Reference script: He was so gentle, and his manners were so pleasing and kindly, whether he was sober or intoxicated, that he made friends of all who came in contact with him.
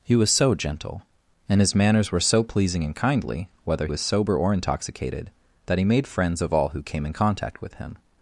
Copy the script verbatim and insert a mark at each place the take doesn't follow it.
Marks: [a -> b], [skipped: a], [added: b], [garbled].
He was so gentle, and his manners were so pleasing and kindly, whether [skipped: he] was sober or intoxicated, that he made friends of all who came in contact with him.